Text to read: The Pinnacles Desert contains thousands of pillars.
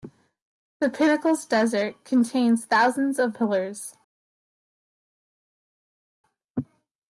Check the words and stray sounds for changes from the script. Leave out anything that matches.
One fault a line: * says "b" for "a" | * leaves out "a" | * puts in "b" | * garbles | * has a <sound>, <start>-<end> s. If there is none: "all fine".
all fine